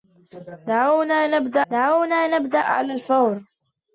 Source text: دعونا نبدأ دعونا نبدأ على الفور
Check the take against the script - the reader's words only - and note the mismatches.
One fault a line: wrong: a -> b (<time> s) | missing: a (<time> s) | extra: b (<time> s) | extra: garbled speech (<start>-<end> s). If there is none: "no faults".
no faults